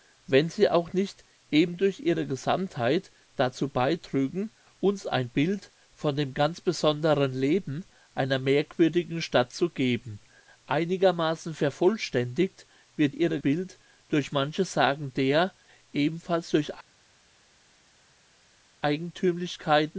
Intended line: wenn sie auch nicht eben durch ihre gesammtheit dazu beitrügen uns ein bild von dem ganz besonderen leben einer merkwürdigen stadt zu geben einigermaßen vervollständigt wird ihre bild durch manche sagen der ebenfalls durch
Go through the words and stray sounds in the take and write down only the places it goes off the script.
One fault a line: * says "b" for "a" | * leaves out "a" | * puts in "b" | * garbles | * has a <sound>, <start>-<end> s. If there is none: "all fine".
all fine